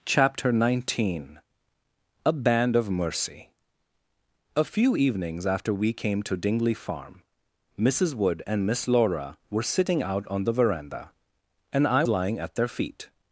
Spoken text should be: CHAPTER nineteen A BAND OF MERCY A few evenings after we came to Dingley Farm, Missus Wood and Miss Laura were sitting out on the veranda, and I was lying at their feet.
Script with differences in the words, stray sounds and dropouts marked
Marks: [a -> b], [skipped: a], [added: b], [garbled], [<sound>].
CHAPTER nineteen A BAND OF MERCY A few evenings after we came to Dingley Farm, Missus Wood and Miss Laura were sitting out on the veranda, and I [skipped: was] lying at their feet.